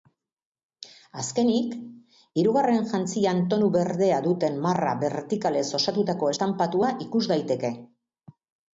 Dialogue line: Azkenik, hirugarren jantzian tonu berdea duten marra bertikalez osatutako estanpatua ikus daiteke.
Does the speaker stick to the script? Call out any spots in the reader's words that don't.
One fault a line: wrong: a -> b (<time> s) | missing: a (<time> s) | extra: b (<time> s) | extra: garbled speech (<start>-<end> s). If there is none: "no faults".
no faults